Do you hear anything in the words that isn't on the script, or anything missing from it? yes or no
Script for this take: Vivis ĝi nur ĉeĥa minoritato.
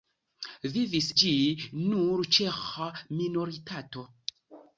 no